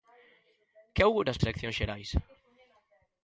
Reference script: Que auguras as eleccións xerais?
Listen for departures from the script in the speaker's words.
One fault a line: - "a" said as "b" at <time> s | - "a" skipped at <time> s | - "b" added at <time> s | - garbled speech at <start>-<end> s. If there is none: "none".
none